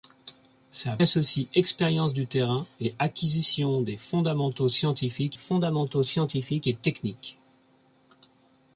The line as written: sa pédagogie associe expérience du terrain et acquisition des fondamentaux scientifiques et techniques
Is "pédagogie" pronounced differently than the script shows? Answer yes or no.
yes